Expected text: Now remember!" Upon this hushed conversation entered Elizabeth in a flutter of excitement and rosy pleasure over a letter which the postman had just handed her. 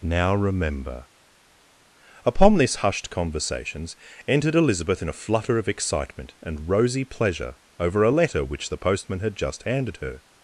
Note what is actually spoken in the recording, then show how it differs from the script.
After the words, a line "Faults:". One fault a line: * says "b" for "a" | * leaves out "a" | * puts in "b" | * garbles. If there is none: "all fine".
Now remember!" Upon this hushed conversations entered Elizabeth in a flutter of excitement and rosy pleasure over a letter which the postman had just handed her.
Faults:
* says "conversations" for "conversation"